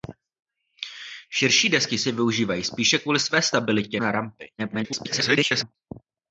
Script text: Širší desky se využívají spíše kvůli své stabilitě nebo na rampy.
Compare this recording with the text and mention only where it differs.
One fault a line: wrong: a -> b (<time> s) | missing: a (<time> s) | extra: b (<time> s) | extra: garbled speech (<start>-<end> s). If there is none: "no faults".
missing: nebo (4.0 s)
extra: garbled speech (4.6-5.8 s)